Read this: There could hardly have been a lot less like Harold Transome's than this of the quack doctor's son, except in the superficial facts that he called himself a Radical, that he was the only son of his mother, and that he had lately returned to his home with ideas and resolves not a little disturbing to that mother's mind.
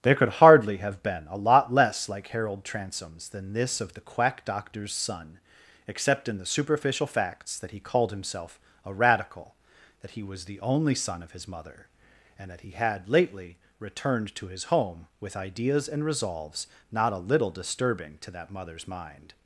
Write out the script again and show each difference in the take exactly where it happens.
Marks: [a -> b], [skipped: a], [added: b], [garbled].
There could hardly have been a lot less like Harold Transome's than this of the quack doctor's son, except in the superficial facts that he called himself a Radical, that he was the only son of his mother, and that he had lately returned to his home with ideas and resolves not a little disturbing to that mother's mind.